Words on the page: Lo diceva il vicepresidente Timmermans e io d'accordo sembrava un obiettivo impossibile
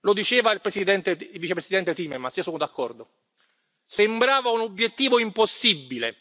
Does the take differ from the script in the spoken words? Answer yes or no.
yes